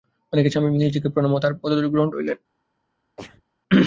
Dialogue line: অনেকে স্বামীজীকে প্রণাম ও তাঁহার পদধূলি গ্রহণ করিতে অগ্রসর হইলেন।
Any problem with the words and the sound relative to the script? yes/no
yes